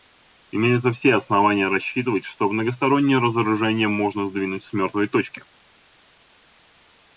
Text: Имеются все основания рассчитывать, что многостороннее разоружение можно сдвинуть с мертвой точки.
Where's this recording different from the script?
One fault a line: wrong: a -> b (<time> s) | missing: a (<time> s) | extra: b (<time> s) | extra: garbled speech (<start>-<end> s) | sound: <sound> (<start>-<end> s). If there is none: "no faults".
no faults